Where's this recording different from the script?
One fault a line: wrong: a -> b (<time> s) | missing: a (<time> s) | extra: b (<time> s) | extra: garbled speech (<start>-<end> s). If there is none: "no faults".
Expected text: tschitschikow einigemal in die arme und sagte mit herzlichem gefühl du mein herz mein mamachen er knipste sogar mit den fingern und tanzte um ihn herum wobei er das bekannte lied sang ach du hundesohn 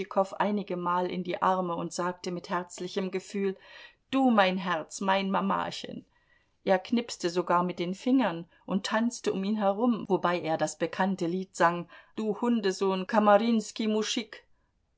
missing: ach (11.9 s)